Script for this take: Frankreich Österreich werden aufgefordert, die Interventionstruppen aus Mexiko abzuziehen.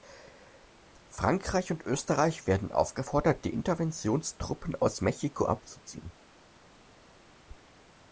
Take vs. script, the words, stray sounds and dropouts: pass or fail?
fail